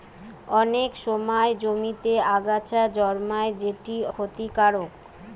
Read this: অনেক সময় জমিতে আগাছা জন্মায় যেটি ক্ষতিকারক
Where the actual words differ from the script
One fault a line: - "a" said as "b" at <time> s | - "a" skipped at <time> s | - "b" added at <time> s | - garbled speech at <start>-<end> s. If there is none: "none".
none